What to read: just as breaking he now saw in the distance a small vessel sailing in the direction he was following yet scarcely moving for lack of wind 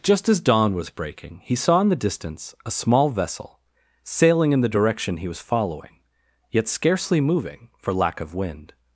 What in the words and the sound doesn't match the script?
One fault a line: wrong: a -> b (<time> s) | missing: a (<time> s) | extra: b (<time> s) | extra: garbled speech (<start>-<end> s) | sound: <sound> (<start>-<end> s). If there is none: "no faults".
extra: dawn was (0.4 s)
missing: now (1.6 s)